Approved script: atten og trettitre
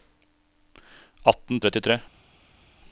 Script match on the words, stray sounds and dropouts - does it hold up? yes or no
yes